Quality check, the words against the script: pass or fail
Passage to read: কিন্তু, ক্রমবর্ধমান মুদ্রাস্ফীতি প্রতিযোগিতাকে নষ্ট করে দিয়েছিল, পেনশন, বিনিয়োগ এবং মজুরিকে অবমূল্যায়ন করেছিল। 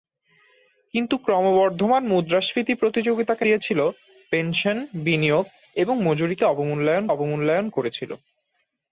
fail